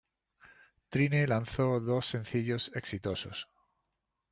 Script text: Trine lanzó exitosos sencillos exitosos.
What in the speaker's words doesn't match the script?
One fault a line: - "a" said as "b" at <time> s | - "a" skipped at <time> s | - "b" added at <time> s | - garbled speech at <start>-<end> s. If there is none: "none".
- "exitosos" said as "dos" at 1.8 s